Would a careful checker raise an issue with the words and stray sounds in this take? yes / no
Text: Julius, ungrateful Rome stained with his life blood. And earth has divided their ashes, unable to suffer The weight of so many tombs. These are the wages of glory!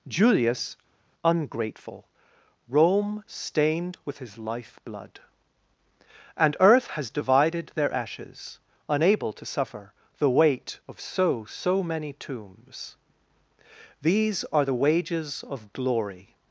yes